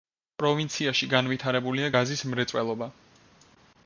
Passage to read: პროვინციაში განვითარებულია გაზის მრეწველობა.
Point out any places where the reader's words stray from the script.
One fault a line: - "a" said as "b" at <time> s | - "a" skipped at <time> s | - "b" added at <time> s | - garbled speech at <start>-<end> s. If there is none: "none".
none